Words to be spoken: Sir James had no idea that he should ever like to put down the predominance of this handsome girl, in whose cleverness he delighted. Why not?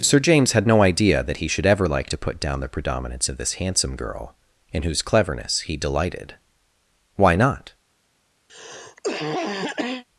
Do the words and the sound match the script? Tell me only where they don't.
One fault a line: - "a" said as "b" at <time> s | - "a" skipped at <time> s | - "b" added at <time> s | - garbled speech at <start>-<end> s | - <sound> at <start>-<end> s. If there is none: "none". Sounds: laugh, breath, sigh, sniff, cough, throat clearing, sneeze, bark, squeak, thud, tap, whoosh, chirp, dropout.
- cough at 8.5-10.0 s